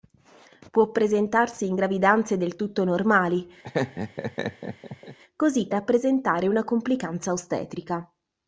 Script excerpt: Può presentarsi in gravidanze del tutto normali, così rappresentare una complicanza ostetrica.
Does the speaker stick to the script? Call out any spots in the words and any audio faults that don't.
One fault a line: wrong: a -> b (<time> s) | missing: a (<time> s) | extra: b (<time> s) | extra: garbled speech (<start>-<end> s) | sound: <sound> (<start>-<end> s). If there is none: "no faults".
sound: laugh (3.6-5.2 s)